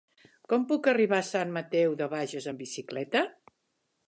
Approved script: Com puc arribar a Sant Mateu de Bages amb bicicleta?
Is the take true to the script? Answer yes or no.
yes